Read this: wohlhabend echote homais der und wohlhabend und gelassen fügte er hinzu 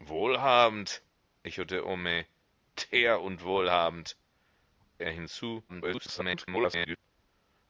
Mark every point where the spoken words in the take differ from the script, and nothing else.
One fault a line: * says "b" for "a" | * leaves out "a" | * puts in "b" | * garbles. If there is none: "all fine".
* leaves out "und gelassen fügte"
* garbles